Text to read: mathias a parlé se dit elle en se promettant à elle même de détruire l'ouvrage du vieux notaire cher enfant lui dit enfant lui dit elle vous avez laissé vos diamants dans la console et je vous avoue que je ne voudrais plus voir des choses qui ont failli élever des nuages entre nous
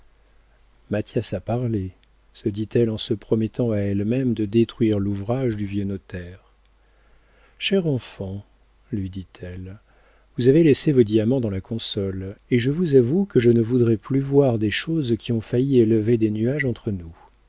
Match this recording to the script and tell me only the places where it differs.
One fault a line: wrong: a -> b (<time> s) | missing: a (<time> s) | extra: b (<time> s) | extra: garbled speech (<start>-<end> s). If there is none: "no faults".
missing: enfant lui dit (9.3 s)